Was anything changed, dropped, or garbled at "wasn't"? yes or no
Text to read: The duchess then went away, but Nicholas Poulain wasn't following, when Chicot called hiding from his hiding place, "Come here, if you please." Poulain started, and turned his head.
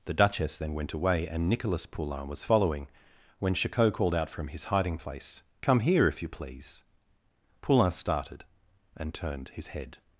yes